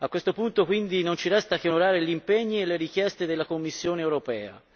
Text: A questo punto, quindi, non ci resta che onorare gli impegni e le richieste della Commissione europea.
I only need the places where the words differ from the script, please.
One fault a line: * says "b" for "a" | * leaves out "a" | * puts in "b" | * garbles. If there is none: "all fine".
all fine